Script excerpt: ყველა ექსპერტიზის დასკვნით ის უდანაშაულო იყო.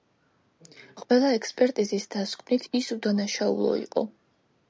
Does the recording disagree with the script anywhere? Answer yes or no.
no